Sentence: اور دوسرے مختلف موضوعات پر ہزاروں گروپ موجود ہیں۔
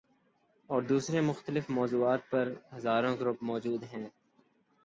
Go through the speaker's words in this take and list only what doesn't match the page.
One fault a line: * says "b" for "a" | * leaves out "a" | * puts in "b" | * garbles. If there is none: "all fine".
all fine